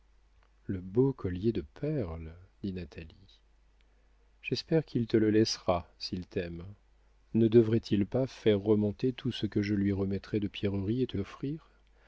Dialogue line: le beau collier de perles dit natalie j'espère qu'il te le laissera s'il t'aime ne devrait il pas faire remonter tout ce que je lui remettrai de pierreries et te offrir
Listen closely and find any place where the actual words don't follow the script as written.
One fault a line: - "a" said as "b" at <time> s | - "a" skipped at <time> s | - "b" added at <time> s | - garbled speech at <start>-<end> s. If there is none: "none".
none